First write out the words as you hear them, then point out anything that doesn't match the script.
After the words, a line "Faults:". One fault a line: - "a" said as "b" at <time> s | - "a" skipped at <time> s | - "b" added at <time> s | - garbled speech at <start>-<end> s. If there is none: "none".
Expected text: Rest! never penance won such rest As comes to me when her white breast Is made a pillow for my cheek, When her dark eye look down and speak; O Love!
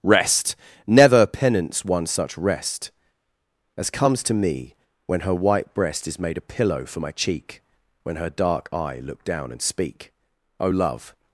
Rest! never penance won such rest As comes to me when her white breast Is made a pillow for my cheek, When her dark eye look down and speak; O Love!
Faults:
none